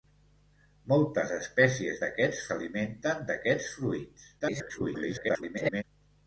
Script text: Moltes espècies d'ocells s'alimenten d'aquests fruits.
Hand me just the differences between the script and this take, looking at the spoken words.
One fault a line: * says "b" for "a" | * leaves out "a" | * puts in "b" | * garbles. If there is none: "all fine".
* says "d'aquests" for "d'ocells"
* garbles